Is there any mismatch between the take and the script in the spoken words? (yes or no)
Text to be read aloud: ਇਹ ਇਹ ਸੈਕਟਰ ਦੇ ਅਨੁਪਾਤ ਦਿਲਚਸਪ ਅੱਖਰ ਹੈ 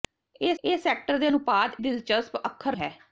no